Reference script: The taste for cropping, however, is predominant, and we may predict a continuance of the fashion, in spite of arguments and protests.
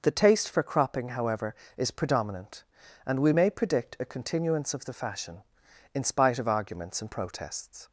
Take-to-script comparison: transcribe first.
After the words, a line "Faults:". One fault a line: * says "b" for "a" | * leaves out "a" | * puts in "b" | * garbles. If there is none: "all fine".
The taste for cropping, however, is predominant, and we may predict a continuance of the fashion, in spite of arguments and protests.
Faults:
all fine